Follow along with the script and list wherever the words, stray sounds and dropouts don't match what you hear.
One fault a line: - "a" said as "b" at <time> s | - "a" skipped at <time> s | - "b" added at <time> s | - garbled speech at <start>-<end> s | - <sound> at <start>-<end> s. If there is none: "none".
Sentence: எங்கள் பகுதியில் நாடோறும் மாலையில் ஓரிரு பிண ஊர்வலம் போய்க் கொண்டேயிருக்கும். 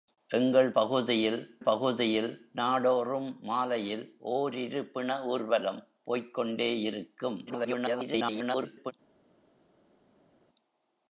- "பகுதியில்" added at 1.6 s
- garbled speech at 7.5-8.9 s